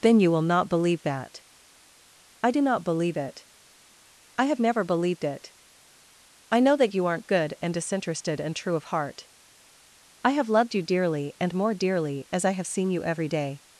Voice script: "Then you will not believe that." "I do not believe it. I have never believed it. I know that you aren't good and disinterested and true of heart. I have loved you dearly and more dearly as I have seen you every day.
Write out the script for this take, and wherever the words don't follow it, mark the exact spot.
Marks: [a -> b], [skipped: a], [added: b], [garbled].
"Then you will not believe that." "I do not believe it. I have never believed it. I know that you aren't good and disinterested and true of heart. I have loved you dearly and more dearly as I have seen you every day.